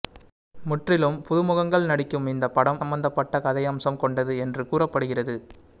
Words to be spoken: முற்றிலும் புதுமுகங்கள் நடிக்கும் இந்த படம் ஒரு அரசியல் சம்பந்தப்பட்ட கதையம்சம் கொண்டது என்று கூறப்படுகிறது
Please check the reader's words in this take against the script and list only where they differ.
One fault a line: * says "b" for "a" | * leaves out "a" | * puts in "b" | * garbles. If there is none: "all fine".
* leaves out "ஒரு அரசியல்"